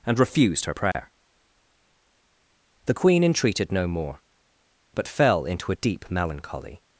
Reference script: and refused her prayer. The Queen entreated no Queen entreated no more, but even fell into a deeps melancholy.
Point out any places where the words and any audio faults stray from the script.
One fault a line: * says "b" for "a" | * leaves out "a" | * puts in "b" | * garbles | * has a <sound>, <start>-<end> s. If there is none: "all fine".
* has a dropout, 0.9-0.9 s
* leaves out "Queen entreated no"
* leaves out "even"
* says "deep" for "deeps"